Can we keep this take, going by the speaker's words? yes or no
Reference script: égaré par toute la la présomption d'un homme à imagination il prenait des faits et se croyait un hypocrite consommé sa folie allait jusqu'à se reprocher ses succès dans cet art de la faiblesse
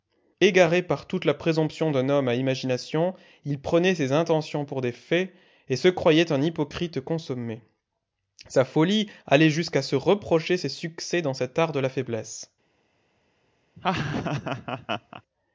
no